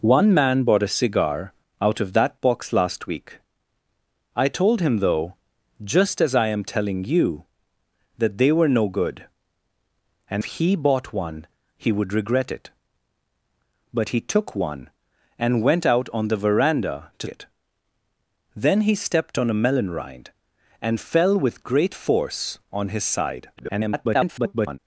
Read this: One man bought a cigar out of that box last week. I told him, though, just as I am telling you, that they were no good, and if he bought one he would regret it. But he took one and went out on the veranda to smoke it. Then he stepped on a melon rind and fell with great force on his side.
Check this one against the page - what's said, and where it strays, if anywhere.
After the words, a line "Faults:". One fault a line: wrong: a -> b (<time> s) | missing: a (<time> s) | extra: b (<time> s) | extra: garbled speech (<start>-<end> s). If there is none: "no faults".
One man bought a cigar out of that box last week. I told him, though, just as I am telling you, that they were no good, and he bought one he would regret it. But he took one and went out on the veranda to it. Then he stepped on a melon rind and fell with great force on his side. [garbled]
Faults:
missing: if (10.4 s)
missing: smoke (17.3 s)
extra: garbled speech (23.6-24.8 s)